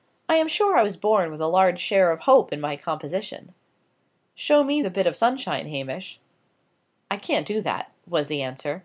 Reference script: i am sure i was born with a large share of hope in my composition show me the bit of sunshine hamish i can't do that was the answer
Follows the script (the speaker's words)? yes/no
yes